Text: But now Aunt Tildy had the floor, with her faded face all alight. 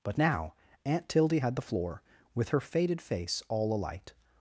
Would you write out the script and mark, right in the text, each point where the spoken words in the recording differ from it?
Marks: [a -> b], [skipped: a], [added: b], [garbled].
But now Aunt Tildy had the floor, with her faded face all alight.